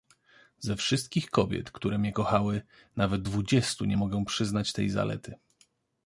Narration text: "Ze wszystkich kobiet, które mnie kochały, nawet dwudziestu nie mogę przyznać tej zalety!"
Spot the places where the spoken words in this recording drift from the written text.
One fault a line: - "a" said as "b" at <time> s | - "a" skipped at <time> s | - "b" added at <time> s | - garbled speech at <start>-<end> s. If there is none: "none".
none